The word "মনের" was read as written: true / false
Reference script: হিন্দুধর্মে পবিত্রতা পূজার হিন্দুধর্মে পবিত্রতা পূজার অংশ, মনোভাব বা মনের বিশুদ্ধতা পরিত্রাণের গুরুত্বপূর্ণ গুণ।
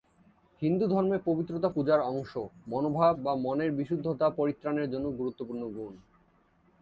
true